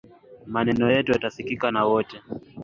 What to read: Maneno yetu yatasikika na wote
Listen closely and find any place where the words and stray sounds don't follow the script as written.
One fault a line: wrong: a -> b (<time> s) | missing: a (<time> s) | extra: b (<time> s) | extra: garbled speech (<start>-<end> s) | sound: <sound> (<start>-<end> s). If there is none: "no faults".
no faults